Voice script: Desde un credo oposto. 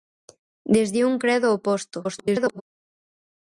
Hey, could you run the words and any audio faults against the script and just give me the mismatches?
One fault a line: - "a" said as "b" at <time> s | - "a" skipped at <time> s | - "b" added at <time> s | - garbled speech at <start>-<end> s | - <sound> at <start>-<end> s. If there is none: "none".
- garbled speech at 2.0-2.6 s